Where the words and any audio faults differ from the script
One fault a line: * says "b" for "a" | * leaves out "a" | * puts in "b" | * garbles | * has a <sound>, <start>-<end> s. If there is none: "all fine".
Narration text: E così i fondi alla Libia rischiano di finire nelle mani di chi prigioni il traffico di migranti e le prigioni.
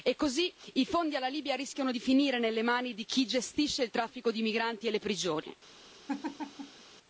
* says "gestisce" for "prigioni"
* has a laugh, 6.1-6.8 s